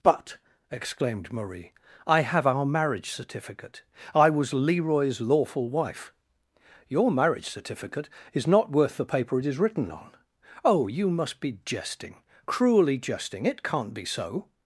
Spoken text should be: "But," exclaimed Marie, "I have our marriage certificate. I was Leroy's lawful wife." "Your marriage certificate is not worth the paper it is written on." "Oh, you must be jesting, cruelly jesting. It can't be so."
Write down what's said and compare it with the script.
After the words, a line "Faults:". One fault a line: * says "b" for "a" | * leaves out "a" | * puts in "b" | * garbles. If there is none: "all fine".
"But," exclaimed Marie, "I have our marriage certificate. I was Leroy's lawful wife." "Your marriage certificate is not worth the paper it is written on." "Oh, you must be jesting, cruelly jesting. It can't be so."
Faults:
all fine